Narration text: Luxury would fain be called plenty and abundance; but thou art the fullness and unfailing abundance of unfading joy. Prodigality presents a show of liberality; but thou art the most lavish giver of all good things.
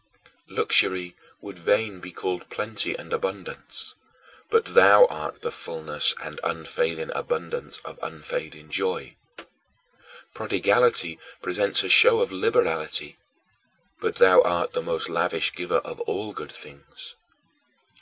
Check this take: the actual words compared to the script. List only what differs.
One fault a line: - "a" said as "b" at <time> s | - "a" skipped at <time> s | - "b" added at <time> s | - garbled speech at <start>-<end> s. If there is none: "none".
none